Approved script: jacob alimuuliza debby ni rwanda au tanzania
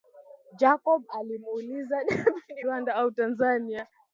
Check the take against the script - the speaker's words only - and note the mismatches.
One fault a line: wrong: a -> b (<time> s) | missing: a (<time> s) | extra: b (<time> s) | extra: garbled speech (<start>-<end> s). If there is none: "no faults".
no faults